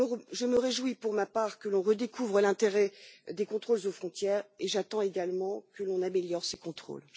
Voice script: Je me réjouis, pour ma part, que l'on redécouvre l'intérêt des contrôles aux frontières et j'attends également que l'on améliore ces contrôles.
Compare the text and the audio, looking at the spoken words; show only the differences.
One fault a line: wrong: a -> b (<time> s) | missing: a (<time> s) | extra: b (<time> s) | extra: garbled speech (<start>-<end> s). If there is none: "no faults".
no faults